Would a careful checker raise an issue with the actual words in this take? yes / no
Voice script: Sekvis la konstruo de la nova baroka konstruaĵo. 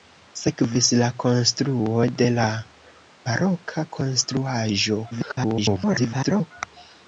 yes